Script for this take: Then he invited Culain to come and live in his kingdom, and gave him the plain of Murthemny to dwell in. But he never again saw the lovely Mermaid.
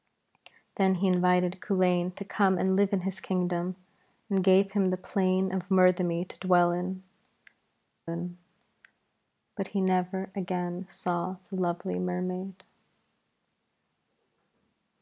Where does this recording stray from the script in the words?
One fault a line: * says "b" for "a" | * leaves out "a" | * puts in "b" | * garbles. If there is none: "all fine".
* puts in "in"